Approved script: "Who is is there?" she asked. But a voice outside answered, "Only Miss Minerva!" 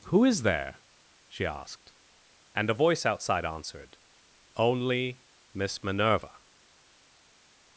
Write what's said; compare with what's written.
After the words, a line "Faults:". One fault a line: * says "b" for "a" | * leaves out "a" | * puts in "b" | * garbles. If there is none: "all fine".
"Who is there?" she asked. And a voice outside answered, "Only Miss Minerva!"
Faults:
* leaves out "is"
* says "And" for "But"